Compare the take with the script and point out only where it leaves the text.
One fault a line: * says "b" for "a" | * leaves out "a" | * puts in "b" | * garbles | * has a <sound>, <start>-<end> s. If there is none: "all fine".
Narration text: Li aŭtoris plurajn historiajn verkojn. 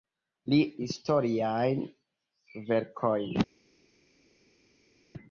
* leaves out "aŭtoris plurajn"